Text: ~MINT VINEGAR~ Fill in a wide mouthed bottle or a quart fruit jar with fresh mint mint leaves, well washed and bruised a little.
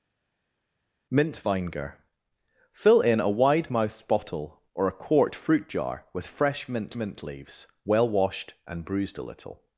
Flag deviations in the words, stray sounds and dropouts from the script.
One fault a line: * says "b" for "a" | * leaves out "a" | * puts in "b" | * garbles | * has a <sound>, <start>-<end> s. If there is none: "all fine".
all fine